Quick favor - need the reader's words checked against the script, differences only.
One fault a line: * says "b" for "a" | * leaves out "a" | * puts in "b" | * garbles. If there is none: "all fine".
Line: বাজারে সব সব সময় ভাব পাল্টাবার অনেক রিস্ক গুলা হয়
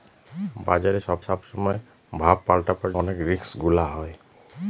all fine